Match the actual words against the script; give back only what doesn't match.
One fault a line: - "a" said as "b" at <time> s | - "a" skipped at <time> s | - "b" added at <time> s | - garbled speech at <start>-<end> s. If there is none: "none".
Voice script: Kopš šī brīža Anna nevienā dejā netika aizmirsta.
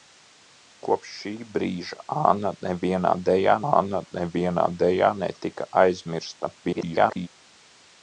- "Anna nevienā dejā" added at 3.7 s
- garbled speech at 6.6-7.3 s